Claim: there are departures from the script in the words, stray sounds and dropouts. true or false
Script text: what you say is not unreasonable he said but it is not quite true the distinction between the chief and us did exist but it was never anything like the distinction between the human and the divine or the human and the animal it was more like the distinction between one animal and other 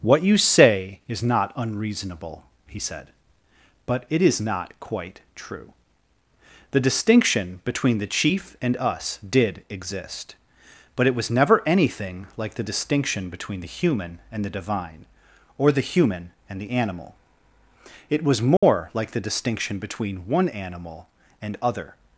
true